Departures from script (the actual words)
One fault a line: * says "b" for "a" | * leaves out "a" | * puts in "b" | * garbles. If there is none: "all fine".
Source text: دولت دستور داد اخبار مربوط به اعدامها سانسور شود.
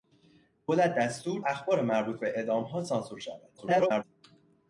* leaves out "داد"
* garbles